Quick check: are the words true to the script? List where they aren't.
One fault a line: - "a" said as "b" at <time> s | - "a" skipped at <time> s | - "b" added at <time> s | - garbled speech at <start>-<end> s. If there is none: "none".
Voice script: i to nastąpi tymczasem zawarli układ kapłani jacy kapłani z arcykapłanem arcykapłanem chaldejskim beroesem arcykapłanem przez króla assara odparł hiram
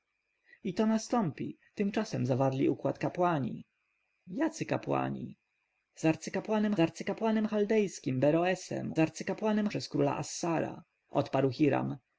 none